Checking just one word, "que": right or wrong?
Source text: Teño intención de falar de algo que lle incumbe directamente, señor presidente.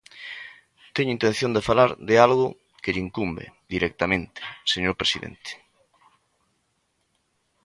right